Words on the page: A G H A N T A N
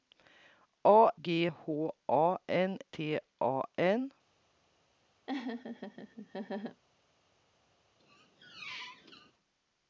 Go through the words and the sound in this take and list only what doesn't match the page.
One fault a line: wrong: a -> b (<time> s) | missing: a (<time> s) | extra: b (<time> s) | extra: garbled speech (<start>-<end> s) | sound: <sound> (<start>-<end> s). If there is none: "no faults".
sound: laugh (5.3-6.8 s)
sound: squeak (8.0-9.3 s)